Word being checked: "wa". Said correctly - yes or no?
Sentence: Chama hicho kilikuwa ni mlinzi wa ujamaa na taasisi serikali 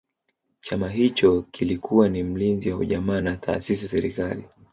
yes